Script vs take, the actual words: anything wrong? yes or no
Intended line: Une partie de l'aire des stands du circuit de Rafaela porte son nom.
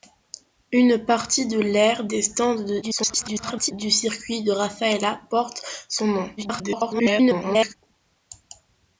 yes